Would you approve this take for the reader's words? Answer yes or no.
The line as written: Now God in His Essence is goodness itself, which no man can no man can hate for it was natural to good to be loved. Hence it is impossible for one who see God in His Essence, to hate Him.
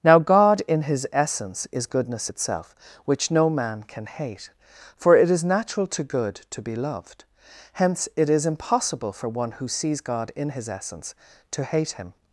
no